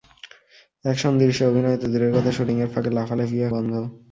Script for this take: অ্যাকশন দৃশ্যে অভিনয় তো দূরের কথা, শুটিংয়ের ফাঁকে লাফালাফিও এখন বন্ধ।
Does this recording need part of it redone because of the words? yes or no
yes